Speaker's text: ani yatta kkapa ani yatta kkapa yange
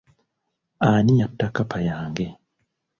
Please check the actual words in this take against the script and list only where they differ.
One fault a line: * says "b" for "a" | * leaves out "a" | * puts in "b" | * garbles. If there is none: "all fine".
* leaves out "ani yatta kkapa"